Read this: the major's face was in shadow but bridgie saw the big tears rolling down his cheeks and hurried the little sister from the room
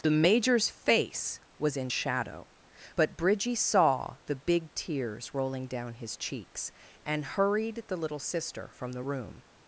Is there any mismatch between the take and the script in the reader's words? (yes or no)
no